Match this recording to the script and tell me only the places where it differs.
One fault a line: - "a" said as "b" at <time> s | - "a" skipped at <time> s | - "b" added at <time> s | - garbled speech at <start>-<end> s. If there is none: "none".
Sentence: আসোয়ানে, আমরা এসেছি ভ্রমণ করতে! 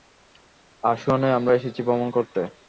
none